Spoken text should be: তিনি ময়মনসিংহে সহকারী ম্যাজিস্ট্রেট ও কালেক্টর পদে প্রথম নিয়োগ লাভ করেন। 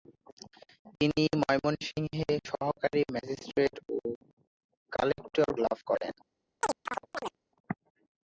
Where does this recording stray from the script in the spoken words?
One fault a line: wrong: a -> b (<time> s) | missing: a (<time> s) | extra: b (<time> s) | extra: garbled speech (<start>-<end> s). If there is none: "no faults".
missing: পদে প্রথম নিয়োগ (5.5 s)